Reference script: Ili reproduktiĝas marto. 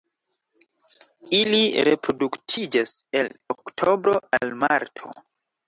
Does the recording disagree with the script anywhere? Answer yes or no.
yes